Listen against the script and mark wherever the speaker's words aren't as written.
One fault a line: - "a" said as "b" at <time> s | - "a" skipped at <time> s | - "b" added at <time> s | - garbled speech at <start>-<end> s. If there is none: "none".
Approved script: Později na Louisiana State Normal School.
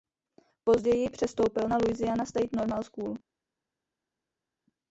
- "přestoupil" added at 1.1 s